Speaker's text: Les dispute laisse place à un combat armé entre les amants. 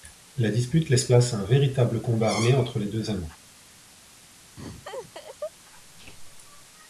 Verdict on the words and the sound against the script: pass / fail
fail